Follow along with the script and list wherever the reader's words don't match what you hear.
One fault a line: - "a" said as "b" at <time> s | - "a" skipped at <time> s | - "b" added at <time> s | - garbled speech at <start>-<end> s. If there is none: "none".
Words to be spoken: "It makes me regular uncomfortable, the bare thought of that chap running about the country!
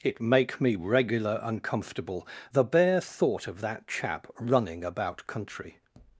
- "makes" said as "make" at 0.2 s
- "the" skipped at 5.3 s